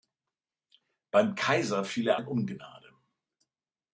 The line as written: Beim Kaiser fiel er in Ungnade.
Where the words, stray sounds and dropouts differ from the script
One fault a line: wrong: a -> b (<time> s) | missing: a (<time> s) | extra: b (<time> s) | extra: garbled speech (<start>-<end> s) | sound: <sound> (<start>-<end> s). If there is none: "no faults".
no faults